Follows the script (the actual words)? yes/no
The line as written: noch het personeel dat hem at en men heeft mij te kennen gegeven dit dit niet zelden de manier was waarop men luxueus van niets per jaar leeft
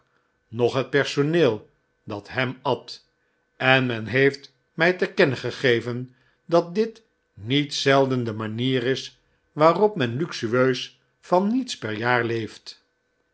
no